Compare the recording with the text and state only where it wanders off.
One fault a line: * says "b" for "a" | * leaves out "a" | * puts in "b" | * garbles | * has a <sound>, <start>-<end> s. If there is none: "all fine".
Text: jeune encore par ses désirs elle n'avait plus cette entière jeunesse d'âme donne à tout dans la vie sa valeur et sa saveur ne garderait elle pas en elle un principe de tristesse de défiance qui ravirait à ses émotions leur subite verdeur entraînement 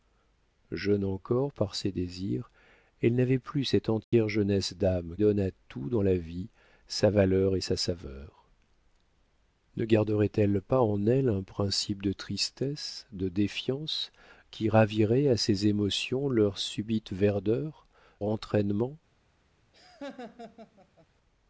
* has a dropout, 4.0-4.1 s
* has a laugh, 19.7-21.1 s